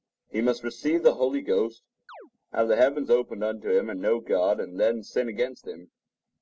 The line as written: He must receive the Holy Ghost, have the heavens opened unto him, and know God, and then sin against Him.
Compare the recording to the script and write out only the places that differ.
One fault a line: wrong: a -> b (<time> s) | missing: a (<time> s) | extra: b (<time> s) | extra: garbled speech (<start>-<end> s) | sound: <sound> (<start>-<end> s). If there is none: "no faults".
sound: chirp (2.1-2.3 s)